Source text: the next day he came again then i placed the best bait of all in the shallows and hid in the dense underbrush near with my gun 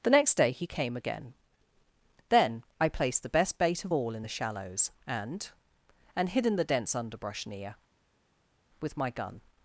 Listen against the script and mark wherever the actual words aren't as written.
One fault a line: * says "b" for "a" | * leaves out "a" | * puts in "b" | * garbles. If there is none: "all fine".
* puts in "and"